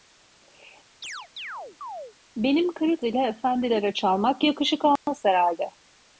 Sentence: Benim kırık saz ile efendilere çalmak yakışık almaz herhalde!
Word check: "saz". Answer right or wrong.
wrong